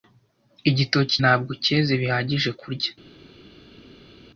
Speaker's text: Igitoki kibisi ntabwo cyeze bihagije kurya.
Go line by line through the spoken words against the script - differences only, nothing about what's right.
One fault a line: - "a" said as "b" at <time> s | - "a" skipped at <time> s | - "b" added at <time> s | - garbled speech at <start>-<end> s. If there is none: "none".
- "kibisi" skipped at 1.1 s